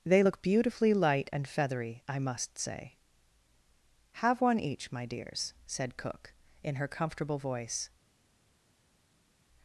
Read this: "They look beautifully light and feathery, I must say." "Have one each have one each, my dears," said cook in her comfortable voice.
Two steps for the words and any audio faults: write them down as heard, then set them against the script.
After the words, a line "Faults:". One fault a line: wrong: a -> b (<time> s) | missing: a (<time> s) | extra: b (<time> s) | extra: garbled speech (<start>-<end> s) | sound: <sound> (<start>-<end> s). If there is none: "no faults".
"They look beautifully light and feathery, I must say." "Have one each, my dears," said cook in her comfortable voice.
Faults:
missing: have one each (4.9 s)